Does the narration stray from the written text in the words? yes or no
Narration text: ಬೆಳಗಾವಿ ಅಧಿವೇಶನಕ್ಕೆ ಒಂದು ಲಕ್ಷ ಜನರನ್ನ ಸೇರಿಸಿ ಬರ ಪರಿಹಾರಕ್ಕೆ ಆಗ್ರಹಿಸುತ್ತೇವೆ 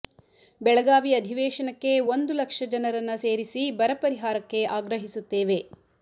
no